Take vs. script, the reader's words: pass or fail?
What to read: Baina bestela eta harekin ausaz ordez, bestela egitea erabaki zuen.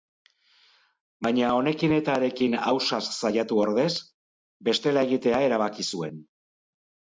fail